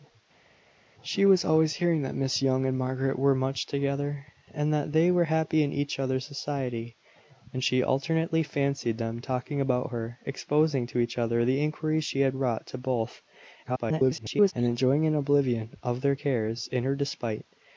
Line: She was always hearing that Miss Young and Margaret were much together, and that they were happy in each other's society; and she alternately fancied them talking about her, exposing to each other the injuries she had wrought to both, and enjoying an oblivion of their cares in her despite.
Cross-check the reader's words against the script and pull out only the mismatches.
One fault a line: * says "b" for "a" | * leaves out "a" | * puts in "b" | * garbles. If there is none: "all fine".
* garbles